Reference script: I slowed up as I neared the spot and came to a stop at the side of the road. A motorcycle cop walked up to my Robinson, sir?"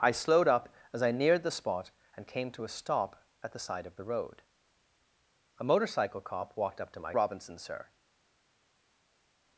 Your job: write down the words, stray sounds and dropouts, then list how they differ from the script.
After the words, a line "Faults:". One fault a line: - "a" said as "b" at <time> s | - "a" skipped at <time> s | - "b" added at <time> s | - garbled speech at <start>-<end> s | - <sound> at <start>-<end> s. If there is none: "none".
I slowed up as I neared the spot and came to a stop at the side of the road. A motorcycle cop walked up to my Robinson, sir?"
Faults:
none